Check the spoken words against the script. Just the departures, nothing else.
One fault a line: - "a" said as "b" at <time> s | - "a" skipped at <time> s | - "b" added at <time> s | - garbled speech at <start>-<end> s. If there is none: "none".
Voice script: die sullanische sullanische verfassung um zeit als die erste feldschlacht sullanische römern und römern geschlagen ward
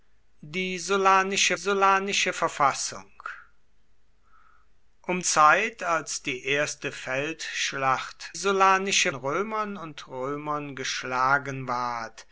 none